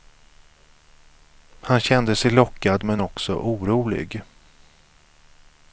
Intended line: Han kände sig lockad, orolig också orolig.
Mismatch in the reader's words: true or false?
true